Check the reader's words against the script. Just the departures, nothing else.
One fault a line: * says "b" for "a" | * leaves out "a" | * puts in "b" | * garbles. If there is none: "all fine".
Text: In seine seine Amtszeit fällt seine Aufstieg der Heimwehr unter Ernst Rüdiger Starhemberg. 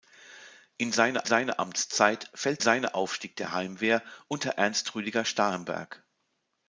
all fine